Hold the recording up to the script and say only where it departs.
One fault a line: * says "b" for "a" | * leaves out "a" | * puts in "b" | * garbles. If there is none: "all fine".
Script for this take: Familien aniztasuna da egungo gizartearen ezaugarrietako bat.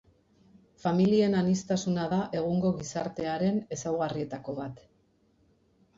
all fine